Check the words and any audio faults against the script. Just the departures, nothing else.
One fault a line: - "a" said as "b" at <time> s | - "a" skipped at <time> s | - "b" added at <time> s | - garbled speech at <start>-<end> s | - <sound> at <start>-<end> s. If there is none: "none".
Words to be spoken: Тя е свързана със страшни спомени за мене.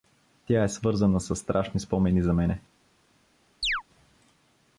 - chirp at 3.6-3.8 s